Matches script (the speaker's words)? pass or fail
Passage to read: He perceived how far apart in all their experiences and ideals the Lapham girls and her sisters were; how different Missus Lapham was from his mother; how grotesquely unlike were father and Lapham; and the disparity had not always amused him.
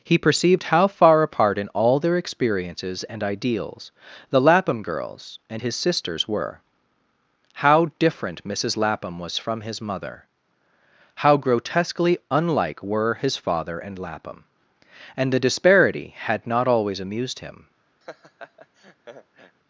fail